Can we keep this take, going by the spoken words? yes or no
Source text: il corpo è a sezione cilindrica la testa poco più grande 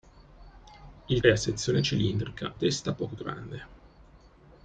no